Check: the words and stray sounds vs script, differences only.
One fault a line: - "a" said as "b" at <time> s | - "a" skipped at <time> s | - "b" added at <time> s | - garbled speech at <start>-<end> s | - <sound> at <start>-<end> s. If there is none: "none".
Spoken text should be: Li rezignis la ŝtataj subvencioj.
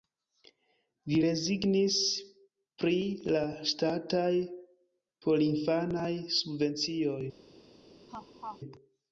- "pri" added at 2.8 s
- "porinfanaj" added at 5.3 s
- laugh at 8.1-8.6 s